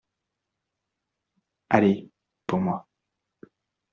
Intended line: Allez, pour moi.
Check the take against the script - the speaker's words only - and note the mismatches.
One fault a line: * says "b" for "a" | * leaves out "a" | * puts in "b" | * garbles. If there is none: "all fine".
all fine